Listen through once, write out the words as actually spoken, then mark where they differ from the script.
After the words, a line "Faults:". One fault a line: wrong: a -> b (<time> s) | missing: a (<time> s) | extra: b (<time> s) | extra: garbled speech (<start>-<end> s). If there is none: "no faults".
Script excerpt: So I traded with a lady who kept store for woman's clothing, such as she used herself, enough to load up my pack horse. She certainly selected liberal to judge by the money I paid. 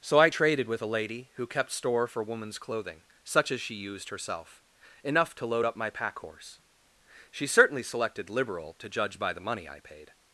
So I traded with a lady who kept store for woman's clothing, such as she used herself, enough to load up my pack horse. She certainly selected liberal to judge by the money I paid.
Faults:
no faults